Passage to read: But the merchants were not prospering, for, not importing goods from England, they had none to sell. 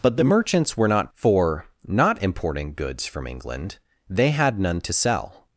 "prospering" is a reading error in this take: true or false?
true